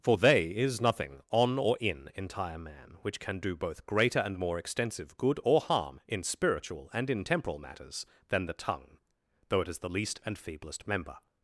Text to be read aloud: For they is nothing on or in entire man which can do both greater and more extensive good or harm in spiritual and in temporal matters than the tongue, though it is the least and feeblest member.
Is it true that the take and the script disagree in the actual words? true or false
false